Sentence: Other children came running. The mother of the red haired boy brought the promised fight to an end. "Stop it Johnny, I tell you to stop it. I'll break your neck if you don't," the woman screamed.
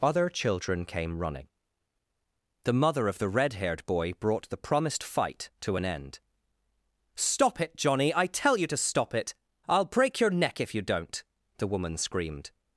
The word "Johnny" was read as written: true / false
true